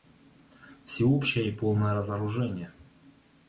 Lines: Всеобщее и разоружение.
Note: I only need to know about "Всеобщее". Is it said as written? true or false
true